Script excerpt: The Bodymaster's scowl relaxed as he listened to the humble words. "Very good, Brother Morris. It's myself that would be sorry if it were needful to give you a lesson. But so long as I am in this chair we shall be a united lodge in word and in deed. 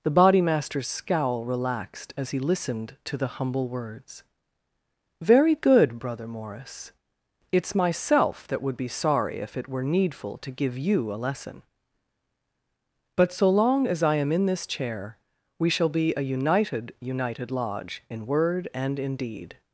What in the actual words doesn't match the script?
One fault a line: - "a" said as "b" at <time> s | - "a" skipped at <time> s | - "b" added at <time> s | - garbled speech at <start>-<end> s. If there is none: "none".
- "united" added at 17.0 s